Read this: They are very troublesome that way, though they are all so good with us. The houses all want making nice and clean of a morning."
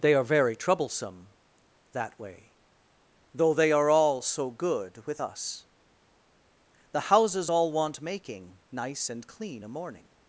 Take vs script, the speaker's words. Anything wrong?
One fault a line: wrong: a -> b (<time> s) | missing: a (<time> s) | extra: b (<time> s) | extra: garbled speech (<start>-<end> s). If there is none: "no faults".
missing: of (9.6 s)